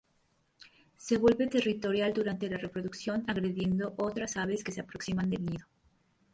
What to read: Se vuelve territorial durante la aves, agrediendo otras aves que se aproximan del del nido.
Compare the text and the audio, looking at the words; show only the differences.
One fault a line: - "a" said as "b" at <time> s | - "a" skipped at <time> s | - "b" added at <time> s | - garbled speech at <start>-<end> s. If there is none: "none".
- "aves" said as "reproducción" at 2.6 s
- "del" skipped at 5.5 s